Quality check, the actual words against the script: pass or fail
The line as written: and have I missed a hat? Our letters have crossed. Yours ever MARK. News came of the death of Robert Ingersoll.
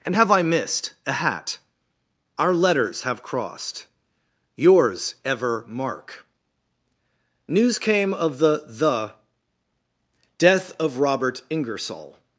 fail